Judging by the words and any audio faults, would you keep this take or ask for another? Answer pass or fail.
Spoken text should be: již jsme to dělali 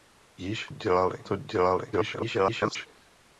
fail